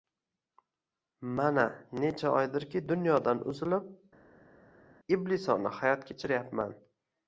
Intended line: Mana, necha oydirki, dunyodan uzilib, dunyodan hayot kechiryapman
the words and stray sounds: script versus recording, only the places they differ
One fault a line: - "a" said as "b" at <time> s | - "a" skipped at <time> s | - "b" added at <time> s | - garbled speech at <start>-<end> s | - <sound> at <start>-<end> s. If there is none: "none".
- "dunyodan" said as "iblisona" at 5.2 s